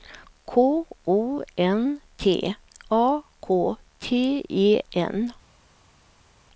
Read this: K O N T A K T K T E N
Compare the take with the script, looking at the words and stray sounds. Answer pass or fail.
fail